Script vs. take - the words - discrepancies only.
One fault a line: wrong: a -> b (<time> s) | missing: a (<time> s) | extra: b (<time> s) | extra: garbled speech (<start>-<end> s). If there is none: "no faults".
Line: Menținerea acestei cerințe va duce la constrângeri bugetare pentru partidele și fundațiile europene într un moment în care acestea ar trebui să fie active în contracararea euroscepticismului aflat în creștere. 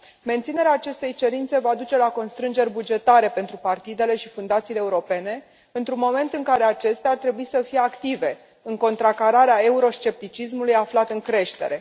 no faults